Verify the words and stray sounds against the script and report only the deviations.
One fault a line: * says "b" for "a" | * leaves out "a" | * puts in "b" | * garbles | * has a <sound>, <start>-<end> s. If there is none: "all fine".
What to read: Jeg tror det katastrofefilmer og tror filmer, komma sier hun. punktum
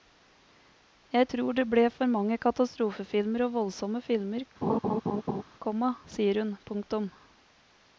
* puts in "ble for mange"
* says "voldsomme" for "tror"
* has a laugh, 4.6-5.4 s